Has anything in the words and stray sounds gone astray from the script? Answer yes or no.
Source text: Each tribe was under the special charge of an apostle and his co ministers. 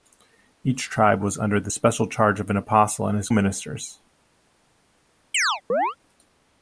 yes